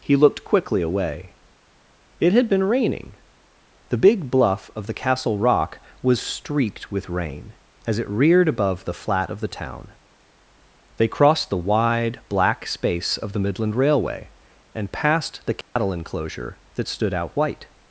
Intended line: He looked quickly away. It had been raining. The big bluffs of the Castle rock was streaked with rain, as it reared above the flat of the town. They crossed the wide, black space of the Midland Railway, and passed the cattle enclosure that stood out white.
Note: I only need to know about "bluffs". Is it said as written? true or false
false